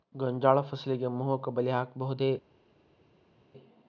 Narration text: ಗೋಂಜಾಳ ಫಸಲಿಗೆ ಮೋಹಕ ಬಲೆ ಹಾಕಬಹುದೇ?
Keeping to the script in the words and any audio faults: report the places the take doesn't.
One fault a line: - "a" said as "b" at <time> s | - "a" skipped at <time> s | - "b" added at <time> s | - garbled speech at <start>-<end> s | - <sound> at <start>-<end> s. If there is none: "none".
none